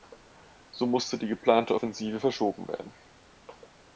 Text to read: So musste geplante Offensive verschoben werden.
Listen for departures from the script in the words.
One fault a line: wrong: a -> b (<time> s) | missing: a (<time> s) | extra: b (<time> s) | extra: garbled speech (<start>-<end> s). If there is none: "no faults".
extra: die (1.1 s)